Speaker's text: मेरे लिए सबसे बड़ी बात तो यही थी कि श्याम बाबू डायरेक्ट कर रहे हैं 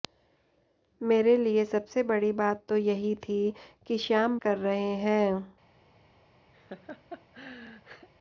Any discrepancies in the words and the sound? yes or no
yes